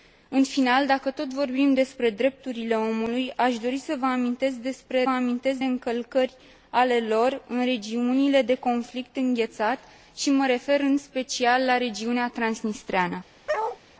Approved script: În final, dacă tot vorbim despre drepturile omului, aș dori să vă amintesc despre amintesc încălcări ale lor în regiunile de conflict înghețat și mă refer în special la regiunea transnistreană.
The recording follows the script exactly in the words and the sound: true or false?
false